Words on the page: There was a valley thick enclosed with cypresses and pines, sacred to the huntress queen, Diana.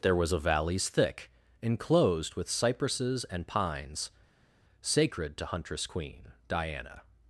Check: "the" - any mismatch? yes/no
yes